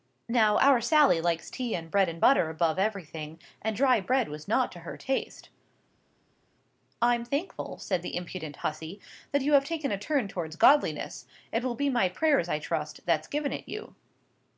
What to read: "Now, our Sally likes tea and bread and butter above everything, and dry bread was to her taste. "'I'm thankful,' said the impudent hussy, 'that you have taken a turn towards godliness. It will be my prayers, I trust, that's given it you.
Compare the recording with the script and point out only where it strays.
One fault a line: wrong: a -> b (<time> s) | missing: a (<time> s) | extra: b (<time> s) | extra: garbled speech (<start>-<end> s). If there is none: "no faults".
extra: not (4.5 s)